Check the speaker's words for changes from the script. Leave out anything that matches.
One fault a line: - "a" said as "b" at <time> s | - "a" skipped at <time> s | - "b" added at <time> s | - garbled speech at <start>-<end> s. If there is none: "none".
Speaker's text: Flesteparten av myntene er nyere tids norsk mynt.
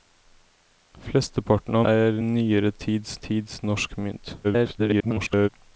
- "myntene" skipped at 1.9 s
- "tids" added at 3.3 s
- garbled speech at 4.4-5.5 s